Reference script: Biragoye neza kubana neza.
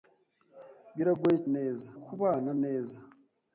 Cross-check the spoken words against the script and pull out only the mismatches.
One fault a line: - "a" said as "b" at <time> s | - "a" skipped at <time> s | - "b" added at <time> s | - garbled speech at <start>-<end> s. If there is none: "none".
none